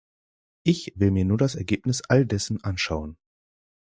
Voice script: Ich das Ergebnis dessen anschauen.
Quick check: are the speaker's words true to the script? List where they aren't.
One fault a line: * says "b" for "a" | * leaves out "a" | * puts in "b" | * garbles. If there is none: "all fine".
* puts in "will mir nur"
* puts in "all"